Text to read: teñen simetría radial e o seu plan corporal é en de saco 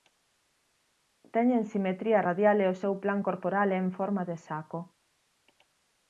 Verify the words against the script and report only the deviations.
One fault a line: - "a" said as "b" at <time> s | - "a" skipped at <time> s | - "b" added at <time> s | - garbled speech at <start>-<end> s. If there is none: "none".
- "forma" added at 4.0 s